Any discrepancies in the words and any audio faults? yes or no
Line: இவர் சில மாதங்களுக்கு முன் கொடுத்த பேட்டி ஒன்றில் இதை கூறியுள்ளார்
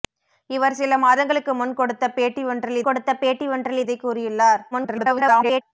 yes